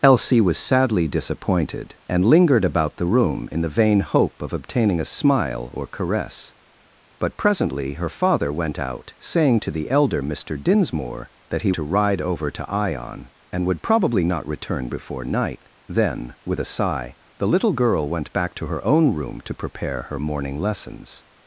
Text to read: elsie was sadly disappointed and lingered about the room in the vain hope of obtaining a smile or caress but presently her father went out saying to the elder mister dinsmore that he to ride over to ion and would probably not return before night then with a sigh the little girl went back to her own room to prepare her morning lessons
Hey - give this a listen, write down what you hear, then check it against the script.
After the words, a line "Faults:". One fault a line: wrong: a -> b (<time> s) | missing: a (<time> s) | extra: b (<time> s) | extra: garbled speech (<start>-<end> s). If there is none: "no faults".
elsie was sadly disappointed and lingered about the room in the vain hope of obtaining a smile or caress but presently her father went out saying to the elder mister dinsmore that he to ride over to ion and would probably not return before night then with a sigh the little girl went back to her own room to prepare her morning lessons
Faults:
no faults